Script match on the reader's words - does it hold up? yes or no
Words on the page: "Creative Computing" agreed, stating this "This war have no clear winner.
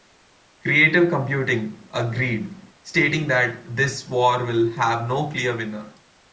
no